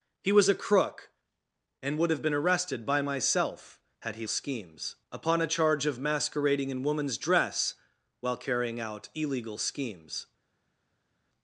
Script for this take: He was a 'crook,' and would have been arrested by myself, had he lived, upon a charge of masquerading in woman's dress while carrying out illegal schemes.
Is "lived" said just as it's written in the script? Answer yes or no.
no